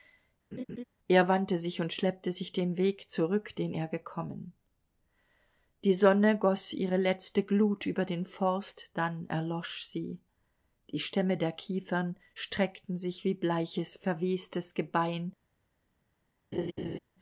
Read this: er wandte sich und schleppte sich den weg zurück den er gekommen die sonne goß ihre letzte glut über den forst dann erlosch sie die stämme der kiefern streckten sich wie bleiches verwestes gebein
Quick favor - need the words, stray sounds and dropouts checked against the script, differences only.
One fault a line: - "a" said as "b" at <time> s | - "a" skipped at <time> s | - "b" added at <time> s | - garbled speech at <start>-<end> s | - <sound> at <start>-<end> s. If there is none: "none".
- laugh at 0.5-0.8 s
- laugh at 16.5-17.0 s